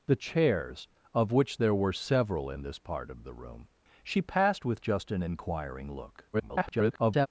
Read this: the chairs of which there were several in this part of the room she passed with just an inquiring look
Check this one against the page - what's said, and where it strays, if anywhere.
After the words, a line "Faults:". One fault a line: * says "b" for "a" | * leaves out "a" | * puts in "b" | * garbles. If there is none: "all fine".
the chairs of which there were several in this part of the room she passed with just an inquiring look [garbled]
Faults:
* garbles